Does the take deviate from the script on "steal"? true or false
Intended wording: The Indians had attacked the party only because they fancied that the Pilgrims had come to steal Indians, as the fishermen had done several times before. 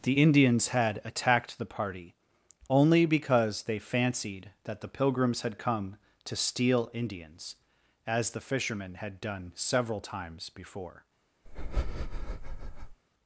false